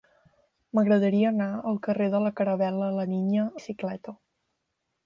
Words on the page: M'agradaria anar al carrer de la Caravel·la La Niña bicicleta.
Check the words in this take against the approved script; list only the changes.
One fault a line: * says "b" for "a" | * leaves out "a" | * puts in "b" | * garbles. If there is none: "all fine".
all fine